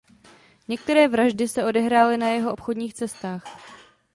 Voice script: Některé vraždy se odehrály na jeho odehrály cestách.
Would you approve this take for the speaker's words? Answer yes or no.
no